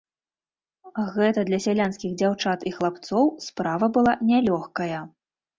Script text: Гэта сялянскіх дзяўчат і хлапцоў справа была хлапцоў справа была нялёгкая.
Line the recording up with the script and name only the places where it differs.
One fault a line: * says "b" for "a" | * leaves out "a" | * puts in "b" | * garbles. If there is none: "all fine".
* puts in "для"
* leaves out "хлапцоў справа была"